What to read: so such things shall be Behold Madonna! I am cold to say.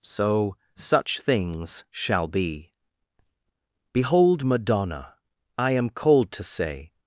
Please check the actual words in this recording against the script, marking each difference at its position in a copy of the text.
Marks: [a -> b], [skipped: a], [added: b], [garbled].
so such things shall be Behold Madonna! I am cold to say.